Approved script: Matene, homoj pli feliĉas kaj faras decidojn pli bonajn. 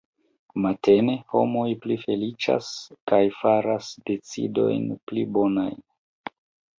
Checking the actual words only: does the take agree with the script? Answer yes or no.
yes